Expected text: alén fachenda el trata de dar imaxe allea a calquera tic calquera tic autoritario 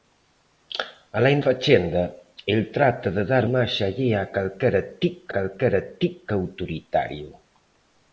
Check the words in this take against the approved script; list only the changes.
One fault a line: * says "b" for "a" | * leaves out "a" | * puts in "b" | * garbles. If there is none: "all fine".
all fine